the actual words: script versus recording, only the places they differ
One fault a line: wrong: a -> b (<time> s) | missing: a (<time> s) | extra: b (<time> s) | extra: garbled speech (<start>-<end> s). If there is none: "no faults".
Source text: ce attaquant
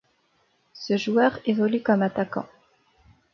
extra: joueur évolue comme (1.0 s)